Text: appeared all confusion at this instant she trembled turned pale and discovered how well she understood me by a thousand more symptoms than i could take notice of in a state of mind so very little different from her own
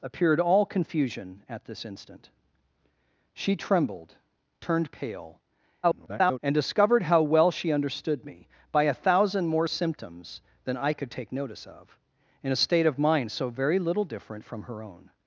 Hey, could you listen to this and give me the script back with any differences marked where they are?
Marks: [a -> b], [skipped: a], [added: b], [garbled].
appeared all confusion at this instant she trembled turned pale [garbled] and discovered how well she understood me by a thousand more symptoms than i could take notice of in a state of mind so very little different from her own